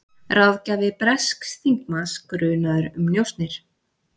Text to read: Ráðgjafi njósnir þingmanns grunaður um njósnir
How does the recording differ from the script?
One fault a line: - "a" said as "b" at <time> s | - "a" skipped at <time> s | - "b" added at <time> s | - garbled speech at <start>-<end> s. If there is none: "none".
- "njósnir" said as "bresks" at 1.0 s